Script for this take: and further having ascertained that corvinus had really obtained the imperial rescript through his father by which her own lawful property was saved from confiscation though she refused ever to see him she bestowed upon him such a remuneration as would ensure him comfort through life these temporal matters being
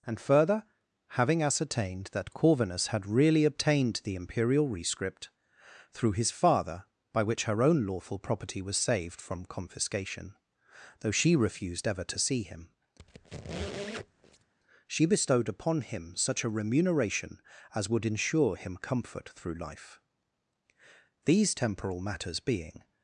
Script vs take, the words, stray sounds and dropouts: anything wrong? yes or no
yes